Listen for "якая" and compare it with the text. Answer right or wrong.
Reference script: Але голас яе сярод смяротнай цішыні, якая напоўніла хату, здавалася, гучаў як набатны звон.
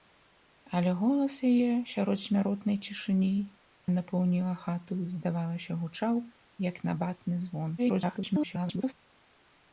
wrong